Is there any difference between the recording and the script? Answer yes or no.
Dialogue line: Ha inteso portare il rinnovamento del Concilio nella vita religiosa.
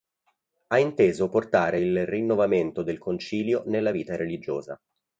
no